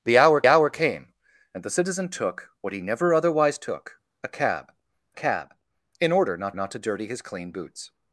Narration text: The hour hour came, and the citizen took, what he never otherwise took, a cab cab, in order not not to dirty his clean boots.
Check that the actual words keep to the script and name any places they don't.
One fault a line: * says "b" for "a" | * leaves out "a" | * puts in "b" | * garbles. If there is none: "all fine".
all fine